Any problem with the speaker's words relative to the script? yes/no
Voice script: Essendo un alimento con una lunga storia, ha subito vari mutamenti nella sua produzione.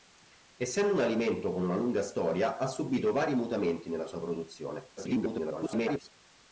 yes